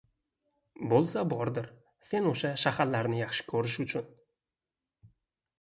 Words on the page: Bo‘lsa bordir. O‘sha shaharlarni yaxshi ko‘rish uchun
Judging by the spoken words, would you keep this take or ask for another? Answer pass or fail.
fail